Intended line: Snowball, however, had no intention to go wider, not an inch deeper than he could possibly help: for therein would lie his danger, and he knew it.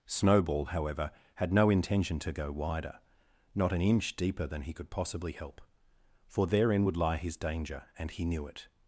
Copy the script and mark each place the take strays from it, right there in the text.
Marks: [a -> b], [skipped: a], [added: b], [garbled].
Snowball, however, had no intention to go wider, not an inch deeper than he could possibly help: for therein would lie his danger, and he knew it.